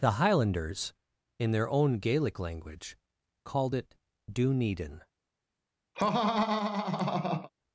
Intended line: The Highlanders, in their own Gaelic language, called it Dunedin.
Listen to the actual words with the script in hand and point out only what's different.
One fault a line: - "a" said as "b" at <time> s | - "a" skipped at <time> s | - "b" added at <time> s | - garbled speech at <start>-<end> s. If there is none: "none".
none